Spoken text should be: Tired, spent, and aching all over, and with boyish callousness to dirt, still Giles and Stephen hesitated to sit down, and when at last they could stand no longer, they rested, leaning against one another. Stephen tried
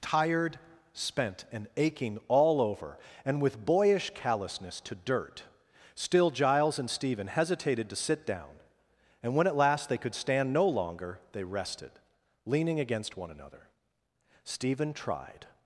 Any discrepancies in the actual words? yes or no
no